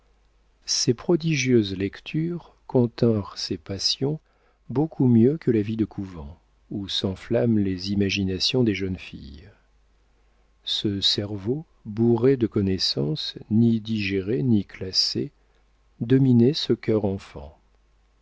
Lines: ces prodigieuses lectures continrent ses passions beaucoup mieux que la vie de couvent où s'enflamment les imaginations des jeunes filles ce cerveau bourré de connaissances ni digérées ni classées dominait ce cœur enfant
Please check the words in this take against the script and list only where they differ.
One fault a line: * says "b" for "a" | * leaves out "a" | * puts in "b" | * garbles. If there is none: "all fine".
all fine